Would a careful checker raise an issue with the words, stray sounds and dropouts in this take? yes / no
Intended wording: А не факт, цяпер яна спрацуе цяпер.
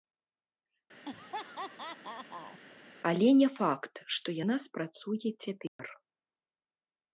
yes